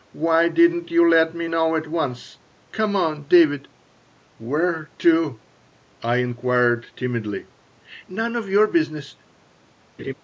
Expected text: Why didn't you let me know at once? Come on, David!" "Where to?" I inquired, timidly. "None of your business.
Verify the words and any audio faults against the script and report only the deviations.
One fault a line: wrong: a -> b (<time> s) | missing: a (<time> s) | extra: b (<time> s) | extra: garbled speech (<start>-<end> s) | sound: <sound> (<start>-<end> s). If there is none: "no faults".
sound: laugh (10.0-10.1 s)